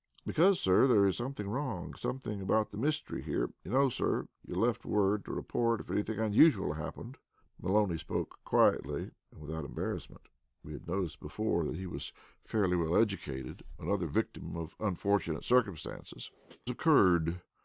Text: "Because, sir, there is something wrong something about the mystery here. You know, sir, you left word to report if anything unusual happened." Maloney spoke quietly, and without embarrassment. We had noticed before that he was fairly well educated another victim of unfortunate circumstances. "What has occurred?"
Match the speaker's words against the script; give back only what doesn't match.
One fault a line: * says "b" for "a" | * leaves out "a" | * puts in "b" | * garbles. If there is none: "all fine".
* leaves out "What has"